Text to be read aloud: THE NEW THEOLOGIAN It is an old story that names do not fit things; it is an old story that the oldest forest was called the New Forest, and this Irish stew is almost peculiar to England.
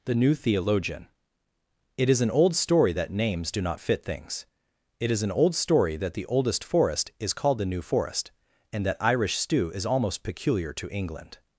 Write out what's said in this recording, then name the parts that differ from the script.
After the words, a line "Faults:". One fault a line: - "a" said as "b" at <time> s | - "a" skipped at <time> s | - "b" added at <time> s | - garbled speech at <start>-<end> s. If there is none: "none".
THE NEW THEOLOGIAN It is an old story that names do not fit things; it is an old story that the oldest forest is called the New Forest, and that Irish stew is almost peculiar to England.
Faults:
- "was" said as "is" at 7.2 s
- "this" said as "that" at 8.9 s